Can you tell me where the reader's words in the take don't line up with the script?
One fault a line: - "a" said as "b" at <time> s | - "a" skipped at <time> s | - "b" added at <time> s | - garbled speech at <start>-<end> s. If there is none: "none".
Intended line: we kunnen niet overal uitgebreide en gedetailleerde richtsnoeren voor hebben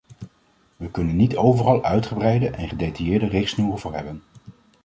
none